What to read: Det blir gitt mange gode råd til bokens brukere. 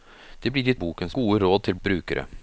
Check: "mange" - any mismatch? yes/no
yes